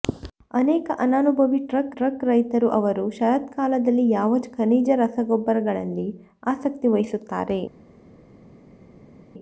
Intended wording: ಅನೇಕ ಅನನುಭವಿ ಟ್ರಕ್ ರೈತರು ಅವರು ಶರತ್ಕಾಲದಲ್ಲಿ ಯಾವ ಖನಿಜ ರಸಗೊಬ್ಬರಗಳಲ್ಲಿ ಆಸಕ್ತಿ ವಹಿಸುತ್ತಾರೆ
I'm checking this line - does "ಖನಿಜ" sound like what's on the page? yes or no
yes